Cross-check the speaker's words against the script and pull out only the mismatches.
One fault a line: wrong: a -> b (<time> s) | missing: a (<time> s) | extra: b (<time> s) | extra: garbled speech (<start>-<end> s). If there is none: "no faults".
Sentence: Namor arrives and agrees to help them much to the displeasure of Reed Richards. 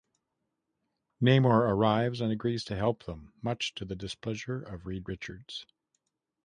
no faults